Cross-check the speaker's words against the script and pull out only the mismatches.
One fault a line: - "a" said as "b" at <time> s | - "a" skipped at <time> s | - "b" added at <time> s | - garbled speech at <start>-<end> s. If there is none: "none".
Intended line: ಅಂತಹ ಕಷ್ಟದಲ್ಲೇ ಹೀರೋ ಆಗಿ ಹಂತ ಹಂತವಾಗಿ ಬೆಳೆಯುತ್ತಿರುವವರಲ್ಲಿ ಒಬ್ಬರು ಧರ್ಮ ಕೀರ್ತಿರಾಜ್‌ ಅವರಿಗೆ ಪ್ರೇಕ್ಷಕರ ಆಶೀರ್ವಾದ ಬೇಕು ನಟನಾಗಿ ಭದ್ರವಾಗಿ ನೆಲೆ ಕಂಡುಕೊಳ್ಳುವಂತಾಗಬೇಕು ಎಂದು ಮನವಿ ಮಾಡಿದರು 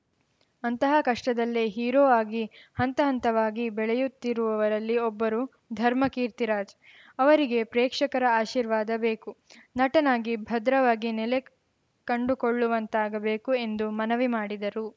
none